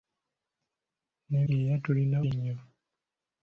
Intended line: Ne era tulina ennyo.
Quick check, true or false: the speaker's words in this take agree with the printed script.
true